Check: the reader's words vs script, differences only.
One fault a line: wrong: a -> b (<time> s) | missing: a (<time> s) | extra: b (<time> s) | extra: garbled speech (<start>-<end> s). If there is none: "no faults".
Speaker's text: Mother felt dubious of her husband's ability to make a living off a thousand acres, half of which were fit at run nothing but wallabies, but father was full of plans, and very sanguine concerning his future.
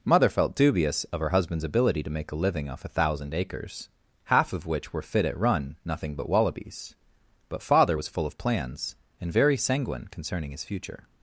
no faults